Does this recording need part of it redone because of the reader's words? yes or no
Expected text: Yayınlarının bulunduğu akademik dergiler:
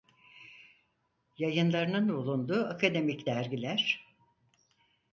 no